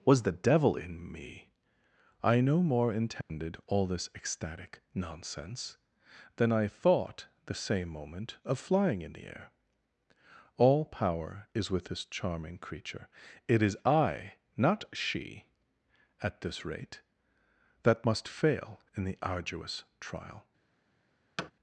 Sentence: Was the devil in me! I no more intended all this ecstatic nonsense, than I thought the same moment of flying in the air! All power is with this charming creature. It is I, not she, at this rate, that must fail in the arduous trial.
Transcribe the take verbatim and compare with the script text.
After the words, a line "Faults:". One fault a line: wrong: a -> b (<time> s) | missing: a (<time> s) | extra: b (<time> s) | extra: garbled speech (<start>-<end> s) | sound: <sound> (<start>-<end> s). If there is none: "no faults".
Was the devil in me! I no more intended all this ecstatic nonsense, than I thought the same moment of flying in the air! All power is with this charming creature. It is I, not she, at this rate, that must fail in the arduous trial.
Faults:
sound: dropout (3.2-3.3 s)
sound: thud (21.4-21.5 s)